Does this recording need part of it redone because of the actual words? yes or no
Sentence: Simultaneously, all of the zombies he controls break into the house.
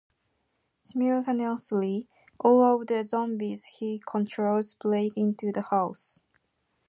no